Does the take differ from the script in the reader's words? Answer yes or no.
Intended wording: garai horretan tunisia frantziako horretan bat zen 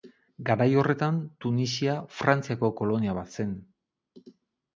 yes